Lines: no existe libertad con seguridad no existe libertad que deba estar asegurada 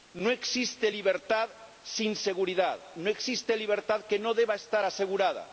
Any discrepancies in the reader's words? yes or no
yes